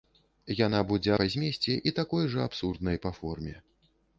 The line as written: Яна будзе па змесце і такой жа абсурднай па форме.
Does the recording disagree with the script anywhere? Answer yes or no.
no